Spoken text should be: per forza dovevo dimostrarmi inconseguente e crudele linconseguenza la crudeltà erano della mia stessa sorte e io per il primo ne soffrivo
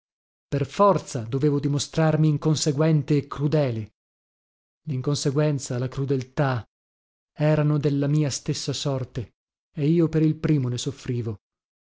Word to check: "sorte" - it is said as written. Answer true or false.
true